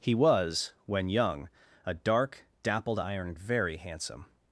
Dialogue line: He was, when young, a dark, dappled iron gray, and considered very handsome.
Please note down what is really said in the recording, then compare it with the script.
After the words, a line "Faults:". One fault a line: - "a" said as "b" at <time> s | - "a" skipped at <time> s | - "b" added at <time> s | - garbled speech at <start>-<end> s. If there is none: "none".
He was, when young, a dark, dappled iron very handsome.
Faults:
- "gray and considered" skipped at 3.3 s